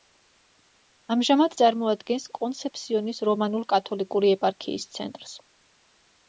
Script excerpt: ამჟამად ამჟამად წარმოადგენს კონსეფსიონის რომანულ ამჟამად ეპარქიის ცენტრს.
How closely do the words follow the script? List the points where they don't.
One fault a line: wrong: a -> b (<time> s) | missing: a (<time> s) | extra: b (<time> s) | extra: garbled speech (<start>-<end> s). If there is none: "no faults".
missing: ამჟამად (1.6 s)
wrong: ამჟამად -> კათოლიკური (3.7 s)